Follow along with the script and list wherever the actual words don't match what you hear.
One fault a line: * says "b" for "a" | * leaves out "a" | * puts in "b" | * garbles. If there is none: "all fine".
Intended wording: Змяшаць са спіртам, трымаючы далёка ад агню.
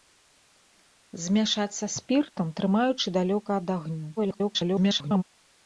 * garbles